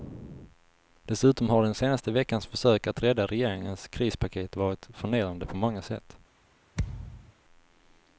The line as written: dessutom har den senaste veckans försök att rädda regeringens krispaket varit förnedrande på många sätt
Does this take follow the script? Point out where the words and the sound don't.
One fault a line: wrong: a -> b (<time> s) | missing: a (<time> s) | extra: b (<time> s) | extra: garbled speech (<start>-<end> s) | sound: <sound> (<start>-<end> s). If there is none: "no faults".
sound: thud (6.7-7.3 s)